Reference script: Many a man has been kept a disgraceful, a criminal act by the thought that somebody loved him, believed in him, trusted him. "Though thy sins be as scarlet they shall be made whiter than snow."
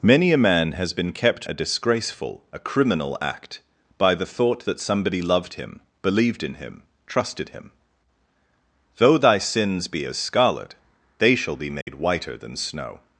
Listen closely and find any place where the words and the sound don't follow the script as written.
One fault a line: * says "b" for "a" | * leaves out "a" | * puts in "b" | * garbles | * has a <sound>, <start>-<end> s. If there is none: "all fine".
* has a dropout, 11.8-11.9 s